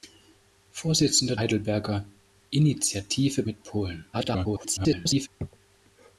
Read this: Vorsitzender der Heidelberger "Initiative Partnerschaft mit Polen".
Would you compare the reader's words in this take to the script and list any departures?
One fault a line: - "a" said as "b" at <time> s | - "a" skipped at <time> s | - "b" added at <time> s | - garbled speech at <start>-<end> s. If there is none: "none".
- "der" skipped at 1.4 s
- "Partnerschaft" skipped at 3.4 s
- garbled speech at 4.1-5.3 s